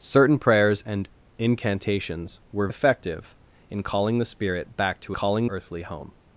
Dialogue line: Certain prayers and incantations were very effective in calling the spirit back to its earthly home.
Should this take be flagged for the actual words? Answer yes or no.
yes